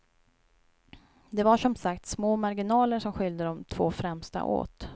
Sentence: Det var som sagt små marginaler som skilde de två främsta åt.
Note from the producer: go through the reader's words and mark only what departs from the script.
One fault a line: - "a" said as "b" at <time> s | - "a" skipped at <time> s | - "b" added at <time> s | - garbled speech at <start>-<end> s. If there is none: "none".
none